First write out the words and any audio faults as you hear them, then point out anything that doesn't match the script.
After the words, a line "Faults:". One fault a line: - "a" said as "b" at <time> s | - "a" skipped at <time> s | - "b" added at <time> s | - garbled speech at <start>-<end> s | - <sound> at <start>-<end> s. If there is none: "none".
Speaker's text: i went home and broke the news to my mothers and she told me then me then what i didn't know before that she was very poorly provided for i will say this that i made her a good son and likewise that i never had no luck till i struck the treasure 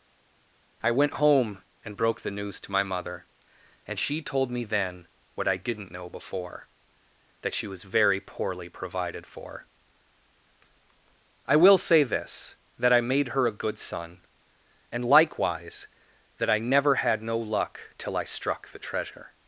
i went home and broke the news to my mother and she told me then what i didn't know before that she was very poorly provided for i will say this that i made her a good son and likewise that i never had no luck till i struck the treasure
Faults:
- "mothers" said as "mother" at 2.8 s
- "me then" skipped at 5.0 s